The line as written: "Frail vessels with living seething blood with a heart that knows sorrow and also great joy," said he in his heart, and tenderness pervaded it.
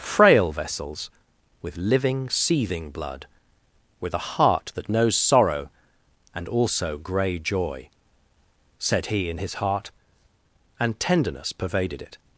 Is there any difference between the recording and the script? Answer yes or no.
yes